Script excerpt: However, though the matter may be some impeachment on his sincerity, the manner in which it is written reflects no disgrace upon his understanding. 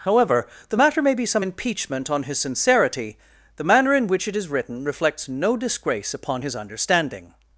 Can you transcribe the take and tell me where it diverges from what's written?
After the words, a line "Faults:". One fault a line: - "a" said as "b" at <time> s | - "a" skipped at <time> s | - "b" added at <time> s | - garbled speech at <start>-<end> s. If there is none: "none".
However, the matter may be some impeachment on his sincerity, the manner in which it is written reflects no disgrace upon his understanding.
Faults:
- "though" skipped at 0.5 s